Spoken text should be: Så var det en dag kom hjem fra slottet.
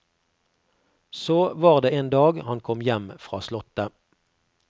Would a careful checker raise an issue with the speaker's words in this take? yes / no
yes